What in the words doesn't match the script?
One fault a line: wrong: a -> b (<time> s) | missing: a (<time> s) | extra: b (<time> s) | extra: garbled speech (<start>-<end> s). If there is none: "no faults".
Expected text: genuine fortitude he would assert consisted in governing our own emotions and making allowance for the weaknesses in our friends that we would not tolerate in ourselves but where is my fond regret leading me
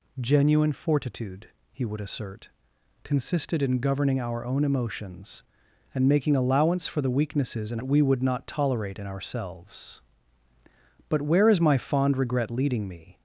missing: our friends that (7.8 s)